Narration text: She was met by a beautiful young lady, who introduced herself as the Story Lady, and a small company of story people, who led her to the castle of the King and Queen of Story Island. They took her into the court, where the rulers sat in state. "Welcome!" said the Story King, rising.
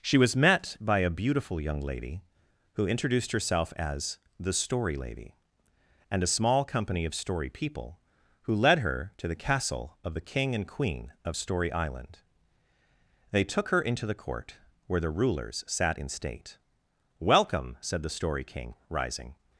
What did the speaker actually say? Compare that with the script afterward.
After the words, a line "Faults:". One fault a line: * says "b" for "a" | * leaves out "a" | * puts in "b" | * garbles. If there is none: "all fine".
She was met by a beautiful young lady, who introduced herself as the Story Lady, and a small company of story people, who led her to the castle of the King and Queen of Story Island. They took her into the court, where the rulers sat in state. "Welcome!" said the Story King, rising.
Faults:
all fine